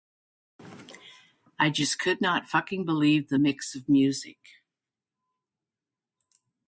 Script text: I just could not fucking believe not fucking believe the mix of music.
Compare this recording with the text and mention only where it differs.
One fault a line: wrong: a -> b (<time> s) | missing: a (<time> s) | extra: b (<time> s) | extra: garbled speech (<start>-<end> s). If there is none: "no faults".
missing: not fucking believe (3.3 s)